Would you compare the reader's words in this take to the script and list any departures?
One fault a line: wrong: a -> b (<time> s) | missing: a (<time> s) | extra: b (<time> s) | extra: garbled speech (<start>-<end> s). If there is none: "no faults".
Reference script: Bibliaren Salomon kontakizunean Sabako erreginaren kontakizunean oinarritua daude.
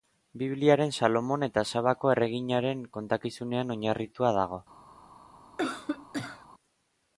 wrong: kontakizunean -> eta (1.5 s)
wrong: daude -> dago (4.4 s)